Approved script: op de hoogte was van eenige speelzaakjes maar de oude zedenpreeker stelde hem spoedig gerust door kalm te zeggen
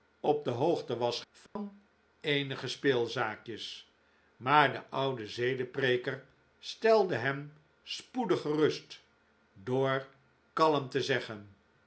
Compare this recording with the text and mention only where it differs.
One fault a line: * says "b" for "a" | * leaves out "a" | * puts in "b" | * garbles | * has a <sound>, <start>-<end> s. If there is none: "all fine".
* has a dropout, 1.5-1.6 s